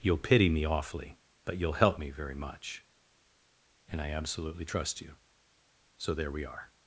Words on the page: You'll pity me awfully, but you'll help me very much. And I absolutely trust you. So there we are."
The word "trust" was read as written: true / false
true